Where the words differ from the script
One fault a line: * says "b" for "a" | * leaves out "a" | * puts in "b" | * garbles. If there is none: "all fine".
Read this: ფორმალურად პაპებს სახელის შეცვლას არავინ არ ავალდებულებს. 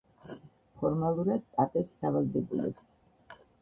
* leaves out "სახელის შეცვლას არავინ"